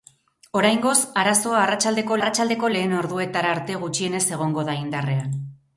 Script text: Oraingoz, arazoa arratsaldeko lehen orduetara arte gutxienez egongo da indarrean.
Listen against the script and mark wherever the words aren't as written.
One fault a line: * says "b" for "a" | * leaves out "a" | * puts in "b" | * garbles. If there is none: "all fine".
* puts in "arratsaldeko"